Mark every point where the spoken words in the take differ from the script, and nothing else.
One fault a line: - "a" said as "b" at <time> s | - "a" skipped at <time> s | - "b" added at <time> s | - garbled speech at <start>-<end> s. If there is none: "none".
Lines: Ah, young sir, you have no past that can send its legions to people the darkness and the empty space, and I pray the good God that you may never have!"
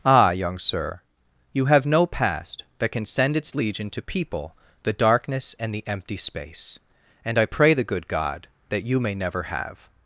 - "legions" said as "legion" at 3.5 s